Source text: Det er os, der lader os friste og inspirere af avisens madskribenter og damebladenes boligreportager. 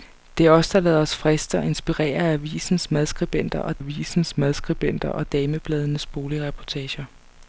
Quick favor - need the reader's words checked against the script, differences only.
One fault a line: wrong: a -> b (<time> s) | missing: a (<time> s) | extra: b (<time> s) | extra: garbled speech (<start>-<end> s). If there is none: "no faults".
extra: avisens madskribenter og (3.8 s)